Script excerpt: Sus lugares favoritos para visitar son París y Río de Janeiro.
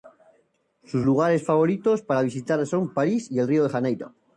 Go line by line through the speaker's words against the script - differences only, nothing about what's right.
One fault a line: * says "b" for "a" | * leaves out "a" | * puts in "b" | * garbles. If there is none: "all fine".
all fine